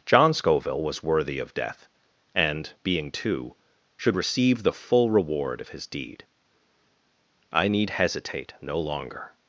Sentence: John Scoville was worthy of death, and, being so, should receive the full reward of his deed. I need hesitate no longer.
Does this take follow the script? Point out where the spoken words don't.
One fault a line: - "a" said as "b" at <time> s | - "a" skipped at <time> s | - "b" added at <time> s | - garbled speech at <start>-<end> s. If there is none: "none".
- "so" said as "too" at 3.1 s